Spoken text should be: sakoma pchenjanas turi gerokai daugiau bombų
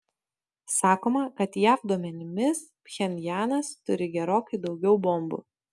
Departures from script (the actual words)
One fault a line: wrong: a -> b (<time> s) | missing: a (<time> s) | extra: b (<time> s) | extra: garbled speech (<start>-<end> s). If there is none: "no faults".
extra: kad jav duomenimis (1.4 s)